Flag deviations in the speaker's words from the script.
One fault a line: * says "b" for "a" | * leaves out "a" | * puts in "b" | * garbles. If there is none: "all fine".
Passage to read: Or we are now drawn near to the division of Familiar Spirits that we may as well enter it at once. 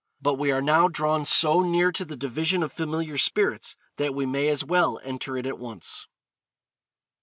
* says "But" for "Or"
* puts in "so"